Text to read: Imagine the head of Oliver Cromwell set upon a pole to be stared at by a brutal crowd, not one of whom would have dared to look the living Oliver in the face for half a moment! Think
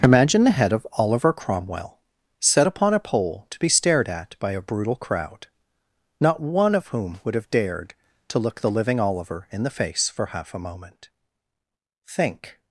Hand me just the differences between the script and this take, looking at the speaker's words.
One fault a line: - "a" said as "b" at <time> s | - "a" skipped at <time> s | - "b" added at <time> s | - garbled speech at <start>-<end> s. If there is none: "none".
none